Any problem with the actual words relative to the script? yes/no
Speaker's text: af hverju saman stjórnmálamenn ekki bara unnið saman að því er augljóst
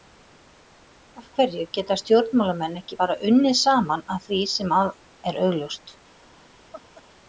yes